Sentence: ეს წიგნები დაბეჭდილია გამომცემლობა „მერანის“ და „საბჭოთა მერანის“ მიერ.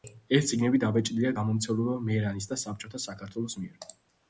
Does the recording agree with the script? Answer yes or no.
no